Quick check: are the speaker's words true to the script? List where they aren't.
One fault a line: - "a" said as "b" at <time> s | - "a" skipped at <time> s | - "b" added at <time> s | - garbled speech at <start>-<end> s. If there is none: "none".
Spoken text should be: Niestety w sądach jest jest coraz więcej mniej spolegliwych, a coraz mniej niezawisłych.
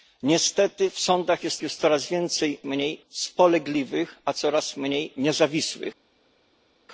none